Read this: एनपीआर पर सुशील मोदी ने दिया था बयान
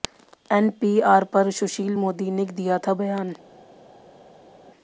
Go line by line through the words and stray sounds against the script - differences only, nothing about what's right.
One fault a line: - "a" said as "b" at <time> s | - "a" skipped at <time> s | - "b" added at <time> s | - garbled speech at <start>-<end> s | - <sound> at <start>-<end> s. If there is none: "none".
none